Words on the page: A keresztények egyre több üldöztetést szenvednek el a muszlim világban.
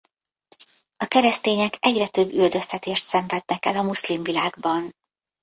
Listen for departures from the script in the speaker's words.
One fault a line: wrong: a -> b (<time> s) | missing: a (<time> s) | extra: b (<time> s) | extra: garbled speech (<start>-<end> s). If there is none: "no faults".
no faults